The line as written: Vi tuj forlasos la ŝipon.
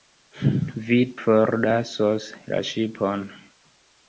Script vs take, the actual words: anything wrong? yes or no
yes